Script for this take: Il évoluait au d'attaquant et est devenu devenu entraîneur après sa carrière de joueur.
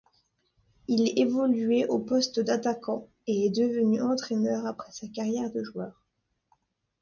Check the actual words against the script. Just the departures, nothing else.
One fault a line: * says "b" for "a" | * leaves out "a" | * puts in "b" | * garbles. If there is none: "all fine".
* puts in "poste"
* leaves out "devenu"